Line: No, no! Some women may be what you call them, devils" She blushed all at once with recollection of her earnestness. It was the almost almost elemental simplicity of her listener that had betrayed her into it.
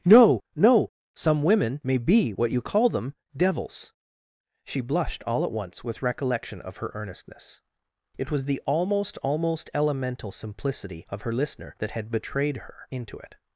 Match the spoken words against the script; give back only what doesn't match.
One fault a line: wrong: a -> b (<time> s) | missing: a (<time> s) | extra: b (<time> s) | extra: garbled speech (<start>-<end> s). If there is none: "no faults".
no faults